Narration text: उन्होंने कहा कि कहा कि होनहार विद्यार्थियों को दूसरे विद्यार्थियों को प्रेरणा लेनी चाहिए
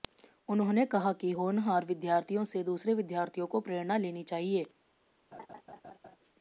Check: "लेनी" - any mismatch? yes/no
no